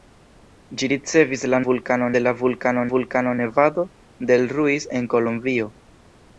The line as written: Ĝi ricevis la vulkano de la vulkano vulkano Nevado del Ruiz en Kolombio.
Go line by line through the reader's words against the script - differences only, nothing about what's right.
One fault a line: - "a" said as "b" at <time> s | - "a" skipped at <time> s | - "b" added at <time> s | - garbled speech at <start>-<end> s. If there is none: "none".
none